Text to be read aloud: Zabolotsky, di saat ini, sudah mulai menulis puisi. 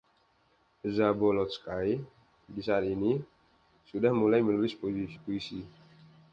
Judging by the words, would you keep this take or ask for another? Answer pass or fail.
pass